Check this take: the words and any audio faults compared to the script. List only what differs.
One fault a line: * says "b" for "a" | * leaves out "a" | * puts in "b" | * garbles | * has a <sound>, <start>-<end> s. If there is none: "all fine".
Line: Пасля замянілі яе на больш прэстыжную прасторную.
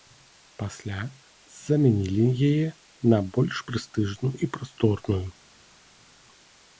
* puts in "і"